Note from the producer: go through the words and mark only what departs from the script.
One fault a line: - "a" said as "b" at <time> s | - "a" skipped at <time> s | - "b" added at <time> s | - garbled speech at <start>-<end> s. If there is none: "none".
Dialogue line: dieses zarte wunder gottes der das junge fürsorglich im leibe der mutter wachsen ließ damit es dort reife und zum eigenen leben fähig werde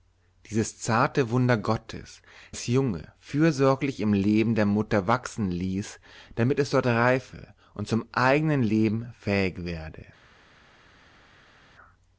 - "der" skipped at 2.2 s